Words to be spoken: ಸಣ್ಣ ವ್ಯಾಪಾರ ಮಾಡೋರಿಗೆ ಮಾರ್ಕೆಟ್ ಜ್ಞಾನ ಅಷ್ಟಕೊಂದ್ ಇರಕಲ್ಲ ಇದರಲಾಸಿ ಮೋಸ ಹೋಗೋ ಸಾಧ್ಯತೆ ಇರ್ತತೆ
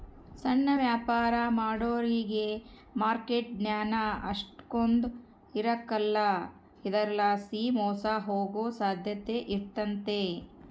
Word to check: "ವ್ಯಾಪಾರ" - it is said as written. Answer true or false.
true